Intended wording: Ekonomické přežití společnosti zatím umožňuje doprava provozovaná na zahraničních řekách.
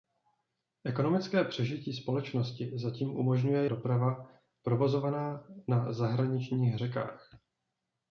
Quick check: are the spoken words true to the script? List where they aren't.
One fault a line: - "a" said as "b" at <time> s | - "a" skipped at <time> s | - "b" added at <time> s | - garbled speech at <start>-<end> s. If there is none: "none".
none